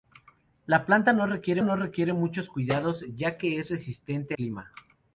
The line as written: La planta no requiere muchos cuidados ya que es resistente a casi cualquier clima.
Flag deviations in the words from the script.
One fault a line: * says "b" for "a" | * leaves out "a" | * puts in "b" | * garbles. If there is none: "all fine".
* puts in "no requiere"
* leaves out "a casi cualquier"